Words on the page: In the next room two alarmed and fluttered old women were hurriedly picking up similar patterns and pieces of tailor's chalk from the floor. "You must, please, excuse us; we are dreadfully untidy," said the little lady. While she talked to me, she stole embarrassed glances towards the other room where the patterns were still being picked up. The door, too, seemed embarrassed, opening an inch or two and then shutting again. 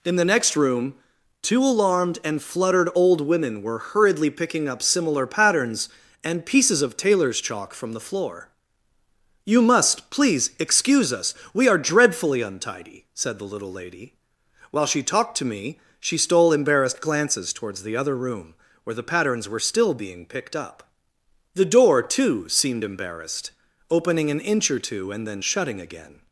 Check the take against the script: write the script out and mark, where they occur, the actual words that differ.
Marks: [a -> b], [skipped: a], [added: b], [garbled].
In the next room two alarmed and fluttered old women were hurriedly picking up similar patterns and pieces of tailor's chalk from the floor. "You must, please, excuse us; we are dreadfully untidy," said the little lady. While she talked to me, she stole embarrassed glances towards the other room where the patterns were still being picked up. The door, too, seemed embarrassed, opening an inch or two and then shutting again.